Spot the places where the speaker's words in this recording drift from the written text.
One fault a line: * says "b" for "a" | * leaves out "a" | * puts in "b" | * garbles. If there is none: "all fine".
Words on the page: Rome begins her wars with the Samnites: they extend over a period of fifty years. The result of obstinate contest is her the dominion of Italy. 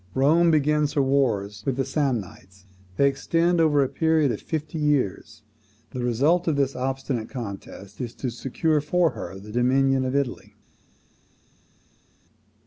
* puts in "this"
* puts in "to secure for"